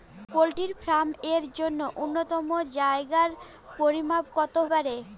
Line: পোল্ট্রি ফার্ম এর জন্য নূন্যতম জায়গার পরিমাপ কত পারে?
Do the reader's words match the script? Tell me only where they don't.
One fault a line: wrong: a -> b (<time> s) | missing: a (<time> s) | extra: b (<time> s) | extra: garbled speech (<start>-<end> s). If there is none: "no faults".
no faults